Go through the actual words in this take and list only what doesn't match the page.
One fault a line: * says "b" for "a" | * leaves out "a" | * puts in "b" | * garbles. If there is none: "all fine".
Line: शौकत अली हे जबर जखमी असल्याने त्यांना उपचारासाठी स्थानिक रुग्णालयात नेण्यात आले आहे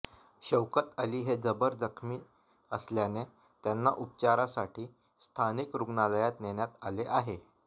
all fine